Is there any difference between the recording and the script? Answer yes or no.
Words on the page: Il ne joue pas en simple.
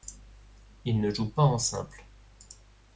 no